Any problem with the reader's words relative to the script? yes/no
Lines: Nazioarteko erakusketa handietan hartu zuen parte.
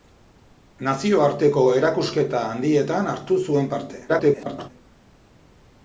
yes